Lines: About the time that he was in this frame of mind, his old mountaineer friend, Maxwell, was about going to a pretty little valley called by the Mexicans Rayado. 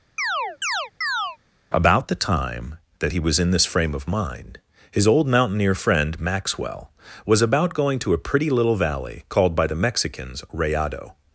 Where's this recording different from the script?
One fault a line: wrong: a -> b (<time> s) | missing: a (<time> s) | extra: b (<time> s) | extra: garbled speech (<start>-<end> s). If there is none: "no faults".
no faults